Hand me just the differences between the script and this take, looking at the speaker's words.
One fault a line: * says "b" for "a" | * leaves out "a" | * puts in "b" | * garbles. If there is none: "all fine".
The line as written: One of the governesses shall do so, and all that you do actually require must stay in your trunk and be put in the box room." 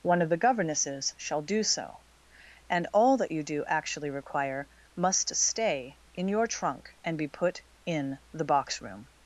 all fine